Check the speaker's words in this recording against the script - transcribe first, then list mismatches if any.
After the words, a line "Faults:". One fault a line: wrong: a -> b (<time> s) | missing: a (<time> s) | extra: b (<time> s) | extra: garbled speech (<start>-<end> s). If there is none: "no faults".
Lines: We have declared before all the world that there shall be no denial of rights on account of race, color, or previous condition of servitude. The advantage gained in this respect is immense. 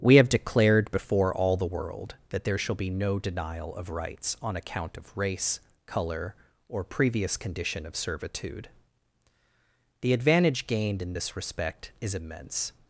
We have declared before all the world that there shall be no denial of rights on account of race, color, or previous condition of servitude. The advantage gained in this respect is immense.
Faults:
no faults